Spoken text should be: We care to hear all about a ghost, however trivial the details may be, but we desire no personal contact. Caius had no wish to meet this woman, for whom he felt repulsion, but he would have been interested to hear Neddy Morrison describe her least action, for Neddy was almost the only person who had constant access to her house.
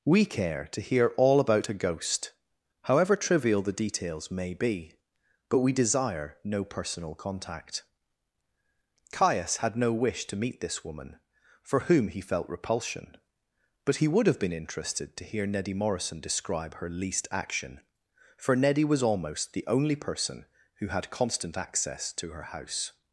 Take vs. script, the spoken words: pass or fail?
pass